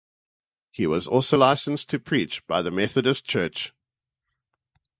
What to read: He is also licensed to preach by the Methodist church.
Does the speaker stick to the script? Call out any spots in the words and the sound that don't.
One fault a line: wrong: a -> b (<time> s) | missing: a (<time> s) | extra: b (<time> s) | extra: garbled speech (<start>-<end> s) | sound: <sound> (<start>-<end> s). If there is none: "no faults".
wrong: is -> was (0.9 s)